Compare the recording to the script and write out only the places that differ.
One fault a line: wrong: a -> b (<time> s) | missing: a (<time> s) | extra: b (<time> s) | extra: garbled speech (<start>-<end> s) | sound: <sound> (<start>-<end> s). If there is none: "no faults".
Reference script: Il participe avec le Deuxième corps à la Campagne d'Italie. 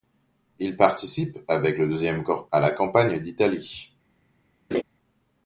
sound: laugh (4.7-4.8 s)